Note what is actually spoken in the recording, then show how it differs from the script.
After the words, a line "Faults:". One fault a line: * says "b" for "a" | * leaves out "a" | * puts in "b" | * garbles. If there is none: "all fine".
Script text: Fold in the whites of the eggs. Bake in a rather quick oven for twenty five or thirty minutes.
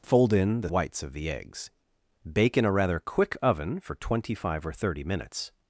Fold in the whites of the eggs. Bake in a rather quick oven for twenty five or thirty minutes.
Faults:
all fine